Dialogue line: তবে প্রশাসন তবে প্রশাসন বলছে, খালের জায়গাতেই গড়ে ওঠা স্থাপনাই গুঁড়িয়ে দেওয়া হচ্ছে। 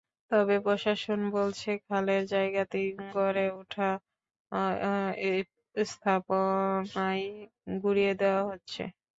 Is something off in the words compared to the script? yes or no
yes